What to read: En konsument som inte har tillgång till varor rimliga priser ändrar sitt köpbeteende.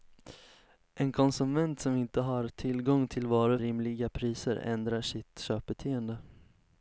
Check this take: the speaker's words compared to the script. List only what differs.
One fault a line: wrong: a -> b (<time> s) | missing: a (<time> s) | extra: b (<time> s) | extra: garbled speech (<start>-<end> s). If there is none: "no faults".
no faults